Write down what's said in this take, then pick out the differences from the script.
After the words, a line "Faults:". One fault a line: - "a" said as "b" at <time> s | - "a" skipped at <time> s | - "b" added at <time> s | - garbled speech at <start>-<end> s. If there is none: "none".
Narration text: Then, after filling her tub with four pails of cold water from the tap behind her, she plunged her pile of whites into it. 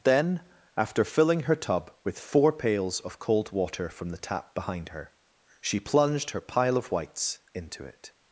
Then, after filling her tub with four pails of cold water from the tap behind her, she plunged her pile of whites into it.
Faults:
none